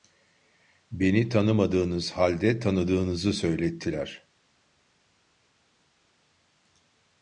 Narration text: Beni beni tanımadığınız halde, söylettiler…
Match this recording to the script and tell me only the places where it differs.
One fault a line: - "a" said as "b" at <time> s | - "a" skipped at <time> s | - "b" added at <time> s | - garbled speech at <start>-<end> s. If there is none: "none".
- "beni" skipped at 1.3 s
- "tanıdığınızı" added at 2.6 s